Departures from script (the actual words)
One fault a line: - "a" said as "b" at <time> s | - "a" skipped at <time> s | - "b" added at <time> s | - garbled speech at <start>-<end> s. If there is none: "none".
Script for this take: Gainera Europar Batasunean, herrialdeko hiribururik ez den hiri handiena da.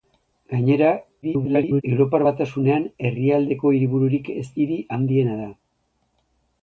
- garbled speech at 1.2-1.8 s
- "den" skipped at 4.5 s